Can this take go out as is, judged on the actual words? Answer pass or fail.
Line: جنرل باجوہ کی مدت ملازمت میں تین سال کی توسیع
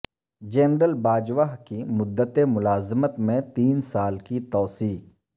pass